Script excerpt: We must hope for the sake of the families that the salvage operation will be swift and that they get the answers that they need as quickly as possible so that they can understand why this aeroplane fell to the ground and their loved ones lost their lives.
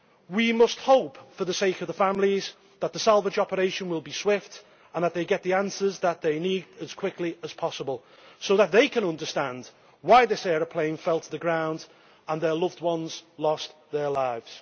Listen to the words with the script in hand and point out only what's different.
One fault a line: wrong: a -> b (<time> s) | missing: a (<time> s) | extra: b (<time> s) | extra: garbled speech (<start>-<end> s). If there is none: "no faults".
no faults